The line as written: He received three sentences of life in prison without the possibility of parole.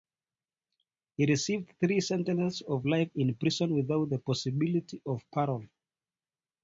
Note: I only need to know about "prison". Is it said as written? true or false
true